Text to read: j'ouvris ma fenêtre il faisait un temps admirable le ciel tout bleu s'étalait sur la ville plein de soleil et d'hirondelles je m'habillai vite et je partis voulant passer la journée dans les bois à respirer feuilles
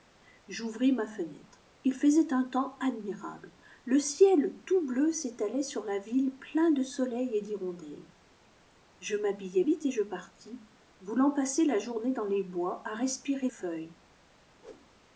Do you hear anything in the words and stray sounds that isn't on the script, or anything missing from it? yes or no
yes